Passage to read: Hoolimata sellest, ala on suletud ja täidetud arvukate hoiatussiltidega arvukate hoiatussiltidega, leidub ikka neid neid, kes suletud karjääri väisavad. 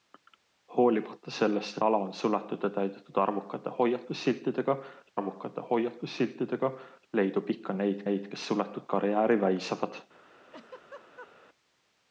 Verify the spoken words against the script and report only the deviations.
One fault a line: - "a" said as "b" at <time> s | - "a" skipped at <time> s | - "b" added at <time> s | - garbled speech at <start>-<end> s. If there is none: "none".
none